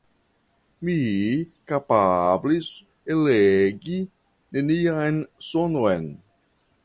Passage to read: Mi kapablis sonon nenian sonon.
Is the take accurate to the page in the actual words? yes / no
no